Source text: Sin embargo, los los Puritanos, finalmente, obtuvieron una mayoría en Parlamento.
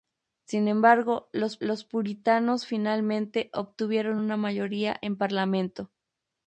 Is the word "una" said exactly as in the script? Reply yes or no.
yes